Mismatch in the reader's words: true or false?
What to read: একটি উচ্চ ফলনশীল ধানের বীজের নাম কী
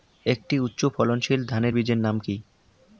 false